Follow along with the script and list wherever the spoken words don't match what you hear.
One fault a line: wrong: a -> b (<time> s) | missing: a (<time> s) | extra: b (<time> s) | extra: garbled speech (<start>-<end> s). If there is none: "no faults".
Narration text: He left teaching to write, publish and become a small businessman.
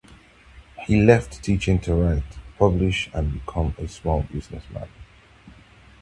no faults